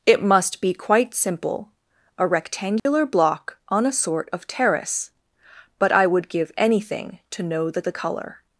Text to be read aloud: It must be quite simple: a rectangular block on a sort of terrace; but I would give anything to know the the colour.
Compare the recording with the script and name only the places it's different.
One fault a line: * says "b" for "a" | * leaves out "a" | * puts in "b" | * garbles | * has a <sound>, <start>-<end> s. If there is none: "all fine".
* has a dropout, 2.8-2.9 s